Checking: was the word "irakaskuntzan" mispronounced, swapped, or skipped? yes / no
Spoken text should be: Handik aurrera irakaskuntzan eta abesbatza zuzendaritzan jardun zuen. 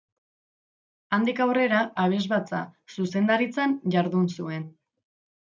yes